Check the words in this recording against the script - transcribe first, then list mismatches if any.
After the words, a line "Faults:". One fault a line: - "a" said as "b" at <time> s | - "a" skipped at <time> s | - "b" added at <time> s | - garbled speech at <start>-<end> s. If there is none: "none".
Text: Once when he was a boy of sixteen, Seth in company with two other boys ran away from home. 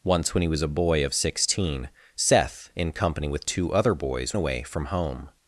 Once when he was a boy of sixteen, Seth in company with two other boys away from home.
Faults:
- "ran" skipped at 4.3 s